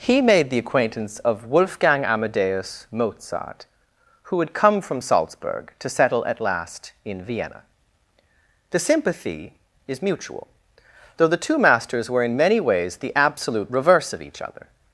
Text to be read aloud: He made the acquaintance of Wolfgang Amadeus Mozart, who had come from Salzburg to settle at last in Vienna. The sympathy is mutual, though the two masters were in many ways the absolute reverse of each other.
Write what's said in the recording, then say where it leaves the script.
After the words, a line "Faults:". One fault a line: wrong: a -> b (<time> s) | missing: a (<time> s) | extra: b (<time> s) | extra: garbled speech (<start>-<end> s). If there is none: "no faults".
He made the acquaintance of Wolfgang Amadeus Mozart, who had come from Salzburg to settle at last in Vienna. The sympathy is mutual, though the two masters were in many ways the absolute reverse of each other.
Faults:
no faults